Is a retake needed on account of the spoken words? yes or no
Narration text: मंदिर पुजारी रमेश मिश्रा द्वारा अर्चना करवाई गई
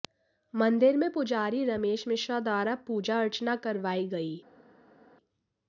yes